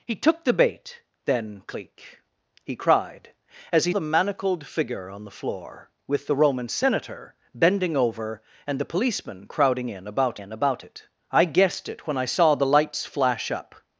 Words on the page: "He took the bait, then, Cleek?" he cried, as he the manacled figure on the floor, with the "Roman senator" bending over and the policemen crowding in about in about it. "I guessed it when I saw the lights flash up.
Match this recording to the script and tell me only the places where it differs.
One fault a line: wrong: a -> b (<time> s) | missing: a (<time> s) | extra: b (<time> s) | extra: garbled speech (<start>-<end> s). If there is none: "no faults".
no faults